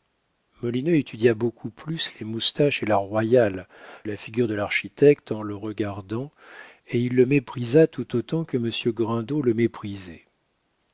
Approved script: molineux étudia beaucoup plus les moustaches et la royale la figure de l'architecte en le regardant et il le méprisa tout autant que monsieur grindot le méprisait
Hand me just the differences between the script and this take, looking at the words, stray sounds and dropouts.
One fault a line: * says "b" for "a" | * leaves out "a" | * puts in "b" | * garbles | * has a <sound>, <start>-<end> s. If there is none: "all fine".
all fine